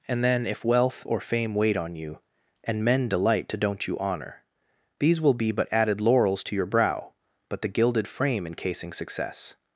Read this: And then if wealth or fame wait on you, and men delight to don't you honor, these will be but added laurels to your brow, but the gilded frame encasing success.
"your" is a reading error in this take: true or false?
false